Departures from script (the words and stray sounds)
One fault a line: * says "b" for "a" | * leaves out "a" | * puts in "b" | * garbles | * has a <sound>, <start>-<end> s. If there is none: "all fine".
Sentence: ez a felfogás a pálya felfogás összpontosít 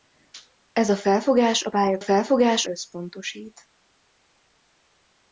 all fine